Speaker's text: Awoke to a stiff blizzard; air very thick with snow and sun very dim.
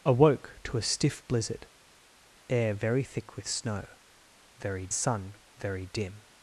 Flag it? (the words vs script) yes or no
yes